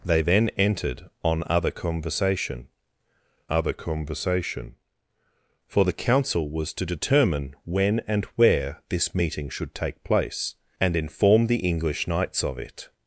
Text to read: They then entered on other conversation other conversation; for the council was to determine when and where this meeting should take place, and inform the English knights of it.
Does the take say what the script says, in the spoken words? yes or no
yes